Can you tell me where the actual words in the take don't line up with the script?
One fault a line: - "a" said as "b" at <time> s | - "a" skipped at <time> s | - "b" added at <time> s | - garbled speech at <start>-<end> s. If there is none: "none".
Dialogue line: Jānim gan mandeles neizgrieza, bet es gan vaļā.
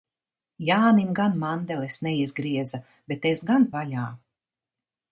none